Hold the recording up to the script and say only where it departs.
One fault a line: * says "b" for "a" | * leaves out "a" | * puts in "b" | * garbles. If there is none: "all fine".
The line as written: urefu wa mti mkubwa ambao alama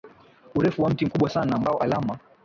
* puts in "sana"